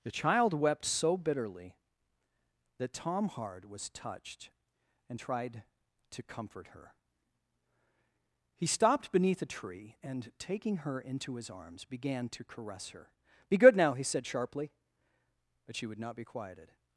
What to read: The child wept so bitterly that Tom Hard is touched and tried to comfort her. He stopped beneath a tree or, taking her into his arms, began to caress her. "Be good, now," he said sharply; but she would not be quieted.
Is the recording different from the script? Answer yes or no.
yes